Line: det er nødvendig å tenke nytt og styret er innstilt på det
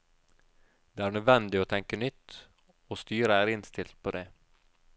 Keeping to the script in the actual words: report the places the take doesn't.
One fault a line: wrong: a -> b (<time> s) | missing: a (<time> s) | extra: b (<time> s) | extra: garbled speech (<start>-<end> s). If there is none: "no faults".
no faults